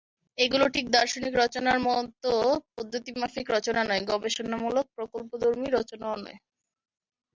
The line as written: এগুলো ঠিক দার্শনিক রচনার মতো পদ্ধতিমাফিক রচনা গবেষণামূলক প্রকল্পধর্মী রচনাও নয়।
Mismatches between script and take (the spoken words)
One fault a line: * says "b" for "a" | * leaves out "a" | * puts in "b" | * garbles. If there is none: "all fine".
* puts in "নয়"